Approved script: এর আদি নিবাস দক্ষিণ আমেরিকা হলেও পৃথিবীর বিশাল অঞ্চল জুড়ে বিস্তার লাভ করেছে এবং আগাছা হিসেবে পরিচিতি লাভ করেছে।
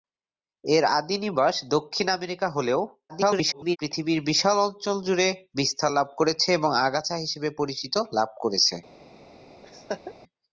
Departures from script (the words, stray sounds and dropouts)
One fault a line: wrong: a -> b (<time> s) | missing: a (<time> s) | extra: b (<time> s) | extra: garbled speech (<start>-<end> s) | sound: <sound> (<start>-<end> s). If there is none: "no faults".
extra: garbled speech (3.1-3.8 s)
sound: laugh (9.6-10.1 s)